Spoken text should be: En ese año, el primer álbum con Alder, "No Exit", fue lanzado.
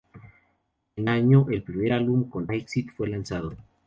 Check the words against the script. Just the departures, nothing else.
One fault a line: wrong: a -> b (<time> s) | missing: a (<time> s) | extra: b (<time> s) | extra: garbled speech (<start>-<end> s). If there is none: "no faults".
missing: ese (1.1 s)
missing: Alder No (2.5 s)